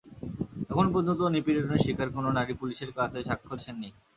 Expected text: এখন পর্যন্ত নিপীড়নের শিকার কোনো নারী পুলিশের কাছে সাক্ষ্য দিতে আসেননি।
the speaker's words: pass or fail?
fail